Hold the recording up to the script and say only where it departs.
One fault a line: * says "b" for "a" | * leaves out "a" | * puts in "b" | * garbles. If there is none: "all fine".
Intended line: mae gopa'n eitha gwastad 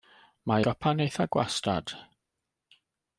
all fine